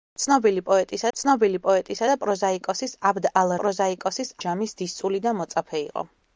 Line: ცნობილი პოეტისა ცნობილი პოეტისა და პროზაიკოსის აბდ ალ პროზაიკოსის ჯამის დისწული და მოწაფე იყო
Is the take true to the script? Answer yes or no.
yes